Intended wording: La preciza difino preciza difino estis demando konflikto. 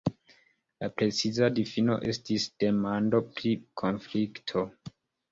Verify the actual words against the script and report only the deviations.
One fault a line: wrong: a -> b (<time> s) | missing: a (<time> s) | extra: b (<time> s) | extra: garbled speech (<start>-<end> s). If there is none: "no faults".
missing: preciza difino (2.0 s)
extra: pri (3.4 s)